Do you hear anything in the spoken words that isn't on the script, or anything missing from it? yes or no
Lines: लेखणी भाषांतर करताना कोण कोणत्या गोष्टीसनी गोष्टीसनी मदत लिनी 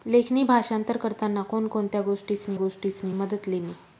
no